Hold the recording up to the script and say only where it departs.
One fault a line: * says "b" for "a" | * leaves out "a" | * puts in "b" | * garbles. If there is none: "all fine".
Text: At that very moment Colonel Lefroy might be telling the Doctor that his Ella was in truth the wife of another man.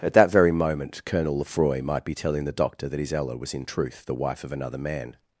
all fine